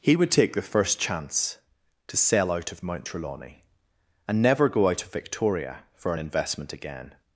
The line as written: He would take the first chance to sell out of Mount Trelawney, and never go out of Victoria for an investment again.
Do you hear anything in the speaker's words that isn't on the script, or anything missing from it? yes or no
no